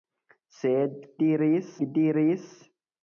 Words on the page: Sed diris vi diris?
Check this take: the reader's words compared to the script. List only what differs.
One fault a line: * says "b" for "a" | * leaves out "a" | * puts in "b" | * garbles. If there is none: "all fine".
all fine